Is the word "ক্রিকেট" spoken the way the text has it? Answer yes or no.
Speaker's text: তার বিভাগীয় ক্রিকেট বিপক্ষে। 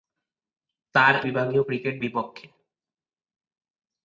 yes